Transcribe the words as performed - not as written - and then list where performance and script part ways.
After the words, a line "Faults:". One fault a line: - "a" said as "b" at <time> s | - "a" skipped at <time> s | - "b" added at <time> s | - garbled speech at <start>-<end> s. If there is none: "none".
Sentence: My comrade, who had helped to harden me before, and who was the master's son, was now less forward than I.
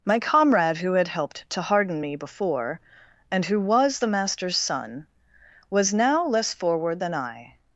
My comrade, who had helped to harden me before, and who was the master's son, was now less forward than I.
Faults:
none